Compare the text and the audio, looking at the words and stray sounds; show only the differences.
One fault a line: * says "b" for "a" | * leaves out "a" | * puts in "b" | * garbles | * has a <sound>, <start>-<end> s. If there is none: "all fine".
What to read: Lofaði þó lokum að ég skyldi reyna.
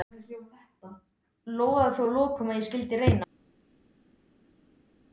* puts in "að"